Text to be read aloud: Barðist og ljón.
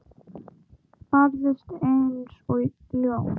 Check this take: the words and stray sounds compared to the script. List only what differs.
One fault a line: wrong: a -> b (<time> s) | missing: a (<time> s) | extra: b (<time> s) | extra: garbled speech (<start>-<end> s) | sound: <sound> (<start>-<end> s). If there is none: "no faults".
extra: eins (1.9 s)